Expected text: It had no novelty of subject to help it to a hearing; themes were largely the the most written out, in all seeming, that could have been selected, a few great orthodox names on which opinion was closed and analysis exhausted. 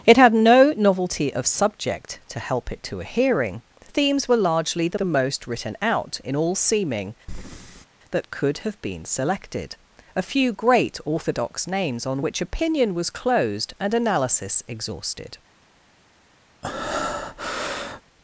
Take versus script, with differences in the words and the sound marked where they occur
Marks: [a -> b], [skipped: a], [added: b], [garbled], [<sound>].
It had no novelty of subject to help it to a hearing; themes were largely the the most written out, in all seeming, [breath] that could have been selected, a few great orthodox names on which opinion was closed and analysis exhausted. [breath]